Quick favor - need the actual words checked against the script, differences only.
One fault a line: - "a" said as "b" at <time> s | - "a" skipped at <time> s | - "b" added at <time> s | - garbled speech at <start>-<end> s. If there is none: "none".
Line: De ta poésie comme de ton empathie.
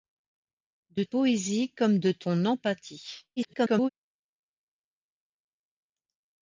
- "ta" skipped at 1.0 s
- garbled speech at 3.4-3.9 s